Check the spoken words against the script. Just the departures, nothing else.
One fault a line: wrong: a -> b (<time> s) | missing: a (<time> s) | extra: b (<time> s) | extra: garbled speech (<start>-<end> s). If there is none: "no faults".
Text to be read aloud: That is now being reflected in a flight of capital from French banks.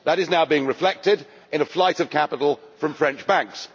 no faults